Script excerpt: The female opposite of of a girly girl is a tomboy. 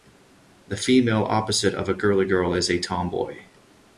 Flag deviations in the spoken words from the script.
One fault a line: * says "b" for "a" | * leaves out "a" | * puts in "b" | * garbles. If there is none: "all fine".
* leaves out "of"